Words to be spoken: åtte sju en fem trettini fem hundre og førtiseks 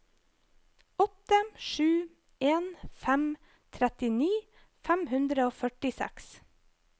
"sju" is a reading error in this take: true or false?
false